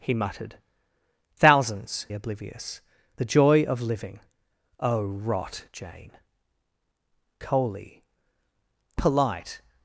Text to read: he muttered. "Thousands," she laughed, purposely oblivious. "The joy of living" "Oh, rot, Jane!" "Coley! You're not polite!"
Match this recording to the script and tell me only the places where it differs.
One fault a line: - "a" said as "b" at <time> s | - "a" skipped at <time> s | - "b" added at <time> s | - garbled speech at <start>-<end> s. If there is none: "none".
- "she laughed purposely" skipped at 2.1 s
- "You're not" skipped at 8.0 s